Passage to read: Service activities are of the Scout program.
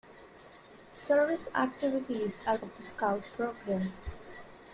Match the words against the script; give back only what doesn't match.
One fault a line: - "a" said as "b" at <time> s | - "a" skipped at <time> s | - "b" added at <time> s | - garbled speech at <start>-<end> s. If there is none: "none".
none